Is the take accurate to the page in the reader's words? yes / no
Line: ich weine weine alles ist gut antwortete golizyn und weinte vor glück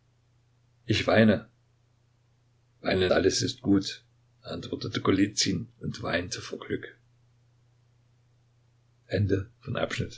yes